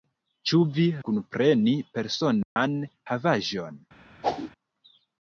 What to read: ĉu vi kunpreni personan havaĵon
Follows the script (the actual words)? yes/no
yes